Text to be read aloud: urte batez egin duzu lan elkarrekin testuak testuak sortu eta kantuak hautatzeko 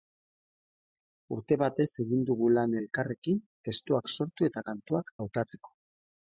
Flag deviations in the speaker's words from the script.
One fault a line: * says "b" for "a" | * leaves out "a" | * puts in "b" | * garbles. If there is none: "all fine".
* says "dugu" for "duzu"
* leaves out "testuak"